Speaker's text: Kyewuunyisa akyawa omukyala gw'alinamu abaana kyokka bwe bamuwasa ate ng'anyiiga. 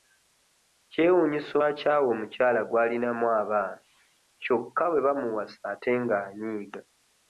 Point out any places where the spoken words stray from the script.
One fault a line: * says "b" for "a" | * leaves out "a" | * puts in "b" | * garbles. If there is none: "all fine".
all fine